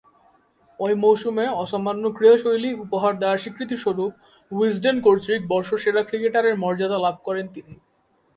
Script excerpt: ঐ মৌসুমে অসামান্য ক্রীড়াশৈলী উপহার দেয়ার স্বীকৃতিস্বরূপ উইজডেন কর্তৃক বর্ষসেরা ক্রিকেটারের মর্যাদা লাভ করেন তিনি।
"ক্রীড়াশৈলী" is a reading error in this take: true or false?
false